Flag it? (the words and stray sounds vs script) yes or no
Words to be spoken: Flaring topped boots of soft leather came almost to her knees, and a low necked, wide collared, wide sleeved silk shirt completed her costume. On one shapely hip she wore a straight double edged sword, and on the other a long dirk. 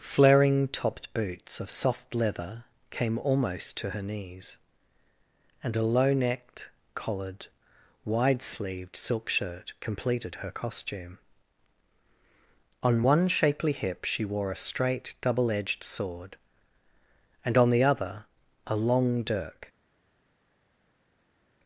yes